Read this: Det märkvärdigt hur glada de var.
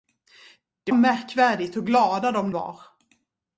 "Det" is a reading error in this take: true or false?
false